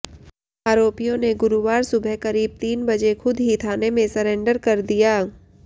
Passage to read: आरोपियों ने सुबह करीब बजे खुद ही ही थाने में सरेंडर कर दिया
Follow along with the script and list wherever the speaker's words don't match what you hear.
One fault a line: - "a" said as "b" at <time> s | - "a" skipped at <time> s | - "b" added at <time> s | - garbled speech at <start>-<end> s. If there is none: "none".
- "गुरुवार" added at 1.4 s
- "तीन" added at 2.6 s
- "ही" skipped at 3.6 s